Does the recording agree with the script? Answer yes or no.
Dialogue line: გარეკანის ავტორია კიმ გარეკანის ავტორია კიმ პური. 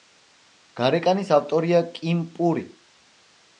no